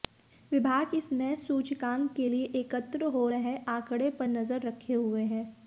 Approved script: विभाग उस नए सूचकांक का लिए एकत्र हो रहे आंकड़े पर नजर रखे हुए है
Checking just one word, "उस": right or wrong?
wrong